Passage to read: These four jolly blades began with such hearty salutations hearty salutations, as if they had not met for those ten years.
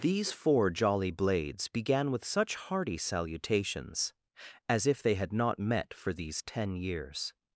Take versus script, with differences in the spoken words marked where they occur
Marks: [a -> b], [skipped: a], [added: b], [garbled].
These four jolly blades began with such hearty salutations [skipped: hearty salutations,] as if they had not met for [those -> these] ten years.